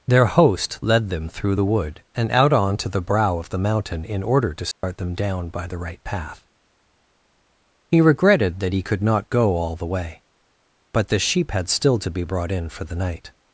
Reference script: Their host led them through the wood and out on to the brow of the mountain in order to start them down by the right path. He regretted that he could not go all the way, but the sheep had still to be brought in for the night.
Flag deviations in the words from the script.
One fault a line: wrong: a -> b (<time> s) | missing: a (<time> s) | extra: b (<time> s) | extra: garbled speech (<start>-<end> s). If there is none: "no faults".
no faults